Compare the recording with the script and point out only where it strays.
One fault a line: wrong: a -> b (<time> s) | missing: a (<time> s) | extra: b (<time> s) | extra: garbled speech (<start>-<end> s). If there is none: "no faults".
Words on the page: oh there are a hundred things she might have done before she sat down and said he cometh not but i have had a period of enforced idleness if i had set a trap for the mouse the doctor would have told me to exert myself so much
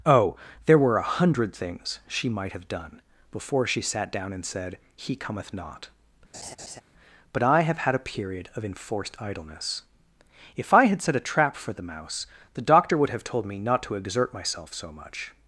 wrong: are -> were (0.8 s)
extra: not (13.6 s)